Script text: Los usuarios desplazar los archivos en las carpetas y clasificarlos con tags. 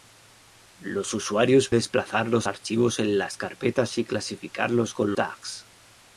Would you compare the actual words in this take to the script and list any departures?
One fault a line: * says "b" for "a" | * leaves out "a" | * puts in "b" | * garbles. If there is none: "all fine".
all fine